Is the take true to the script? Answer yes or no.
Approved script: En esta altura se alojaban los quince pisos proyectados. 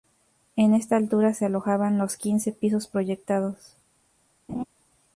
yes